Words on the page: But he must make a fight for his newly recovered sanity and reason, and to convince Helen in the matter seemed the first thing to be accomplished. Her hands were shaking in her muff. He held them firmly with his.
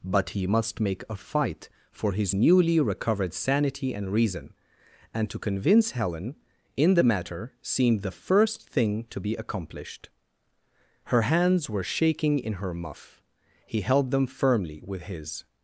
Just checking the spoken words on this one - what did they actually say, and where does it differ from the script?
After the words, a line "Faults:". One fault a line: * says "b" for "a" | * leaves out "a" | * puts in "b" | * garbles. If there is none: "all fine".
But he must make a fight for his newly recovered sanity and reason, and to convince Helen in the matter seemed the first thing to be accomplished. Her hands were shaking in her muff. He held them firmly with his.
Faults:
all fine